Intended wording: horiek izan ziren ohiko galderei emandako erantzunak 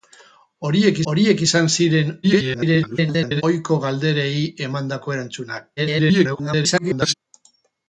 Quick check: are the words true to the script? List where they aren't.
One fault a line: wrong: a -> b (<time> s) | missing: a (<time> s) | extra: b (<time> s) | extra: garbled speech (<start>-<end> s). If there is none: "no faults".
extra: horiek (1.1 s)
extra: garbled speech (2.2-3.4 s)
extra: garbled speech (5.8-7.1 s)